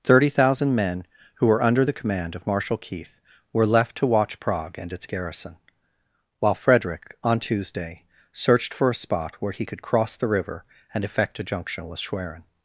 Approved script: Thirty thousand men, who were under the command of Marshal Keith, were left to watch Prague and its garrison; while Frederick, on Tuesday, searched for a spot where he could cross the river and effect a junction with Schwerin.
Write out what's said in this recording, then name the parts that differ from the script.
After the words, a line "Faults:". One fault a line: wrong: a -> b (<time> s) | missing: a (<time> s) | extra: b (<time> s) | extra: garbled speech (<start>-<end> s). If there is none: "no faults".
Thirty thousand men, who were under the command of Marshal Keith, were left to watch Prague and its garrison; while Frederick, on Tuesday, searched for a spot where he could cross the river and effect a junction with Schwerin.
Faults:
no faults